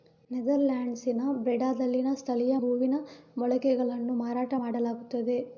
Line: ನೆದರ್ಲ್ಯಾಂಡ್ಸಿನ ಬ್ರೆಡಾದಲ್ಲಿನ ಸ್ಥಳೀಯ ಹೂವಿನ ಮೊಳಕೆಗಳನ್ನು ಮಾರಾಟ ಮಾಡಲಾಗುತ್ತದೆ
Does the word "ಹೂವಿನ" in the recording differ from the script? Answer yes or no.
no